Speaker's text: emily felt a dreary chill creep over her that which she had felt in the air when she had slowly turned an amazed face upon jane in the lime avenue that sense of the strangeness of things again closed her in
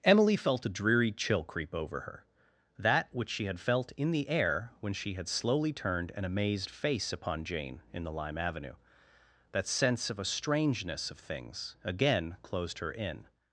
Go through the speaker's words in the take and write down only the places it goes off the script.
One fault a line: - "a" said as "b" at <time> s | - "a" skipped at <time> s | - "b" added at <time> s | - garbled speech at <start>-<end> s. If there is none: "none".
- "the" said as "a" at 10.2 s